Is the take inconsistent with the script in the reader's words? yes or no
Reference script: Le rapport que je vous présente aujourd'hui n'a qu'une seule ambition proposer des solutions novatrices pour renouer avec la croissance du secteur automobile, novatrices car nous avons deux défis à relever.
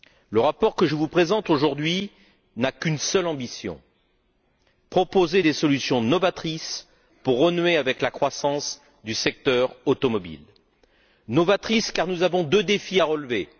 no